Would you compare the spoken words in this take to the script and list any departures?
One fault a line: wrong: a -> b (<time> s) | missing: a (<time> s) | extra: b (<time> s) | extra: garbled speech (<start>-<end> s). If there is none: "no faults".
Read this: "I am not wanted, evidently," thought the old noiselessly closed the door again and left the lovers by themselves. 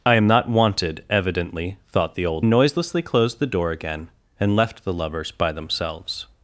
no faults